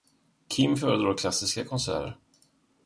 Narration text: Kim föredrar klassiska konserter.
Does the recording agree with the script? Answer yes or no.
yes